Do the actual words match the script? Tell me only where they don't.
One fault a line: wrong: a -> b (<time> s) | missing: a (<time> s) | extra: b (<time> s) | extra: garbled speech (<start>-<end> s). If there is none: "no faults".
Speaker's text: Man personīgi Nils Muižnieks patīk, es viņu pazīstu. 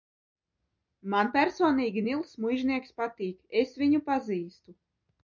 no faults